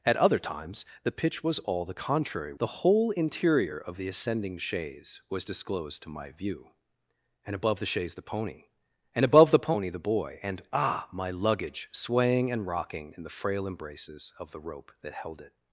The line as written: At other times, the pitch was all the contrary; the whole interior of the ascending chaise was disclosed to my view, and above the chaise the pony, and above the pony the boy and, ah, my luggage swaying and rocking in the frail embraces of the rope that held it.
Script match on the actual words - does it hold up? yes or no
yes